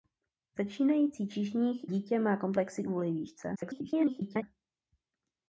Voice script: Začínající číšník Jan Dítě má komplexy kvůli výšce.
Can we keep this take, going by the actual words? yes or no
no